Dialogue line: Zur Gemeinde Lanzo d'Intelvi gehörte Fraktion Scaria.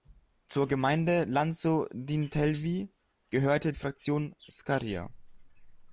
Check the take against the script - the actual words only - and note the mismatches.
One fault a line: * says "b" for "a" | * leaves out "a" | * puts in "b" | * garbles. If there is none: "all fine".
all fine